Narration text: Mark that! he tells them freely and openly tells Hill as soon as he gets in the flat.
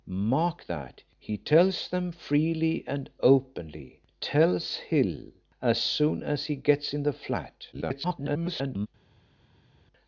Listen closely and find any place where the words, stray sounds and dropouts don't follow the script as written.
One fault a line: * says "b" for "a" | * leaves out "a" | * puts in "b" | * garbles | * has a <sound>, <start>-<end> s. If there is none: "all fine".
* garbles